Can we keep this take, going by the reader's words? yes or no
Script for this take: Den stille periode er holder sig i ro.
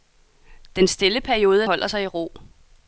yes